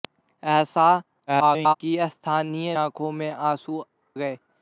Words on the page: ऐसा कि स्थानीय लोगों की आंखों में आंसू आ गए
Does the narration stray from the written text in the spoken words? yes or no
yes